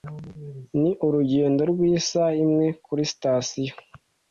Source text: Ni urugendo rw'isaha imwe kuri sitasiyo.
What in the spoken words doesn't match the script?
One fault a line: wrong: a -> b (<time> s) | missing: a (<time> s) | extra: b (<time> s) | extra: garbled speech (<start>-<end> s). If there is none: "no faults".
no faults